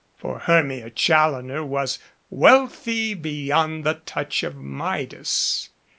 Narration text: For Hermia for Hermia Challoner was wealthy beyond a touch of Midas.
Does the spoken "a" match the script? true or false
false